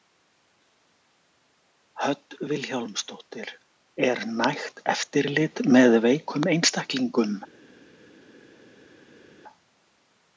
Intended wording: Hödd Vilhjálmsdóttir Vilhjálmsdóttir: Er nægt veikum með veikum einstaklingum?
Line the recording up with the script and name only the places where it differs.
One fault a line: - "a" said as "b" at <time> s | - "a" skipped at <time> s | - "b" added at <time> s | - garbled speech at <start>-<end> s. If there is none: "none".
- "Vilhjálmsdóttir" skipped at 3.5 s
- "veikum" said as "eftirlit" at 5.0 s